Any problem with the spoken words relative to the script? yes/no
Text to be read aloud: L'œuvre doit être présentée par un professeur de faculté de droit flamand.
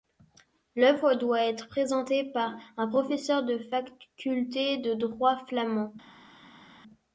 no